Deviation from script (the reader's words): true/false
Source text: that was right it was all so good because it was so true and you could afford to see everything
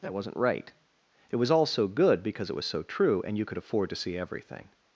true